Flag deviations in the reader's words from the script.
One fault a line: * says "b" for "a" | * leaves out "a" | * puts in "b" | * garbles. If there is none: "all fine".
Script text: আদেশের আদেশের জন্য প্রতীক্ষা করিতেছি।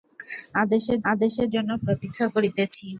all fine